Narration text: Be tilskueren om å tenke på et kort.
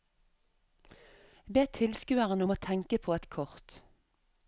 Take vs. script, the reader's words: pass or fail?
pass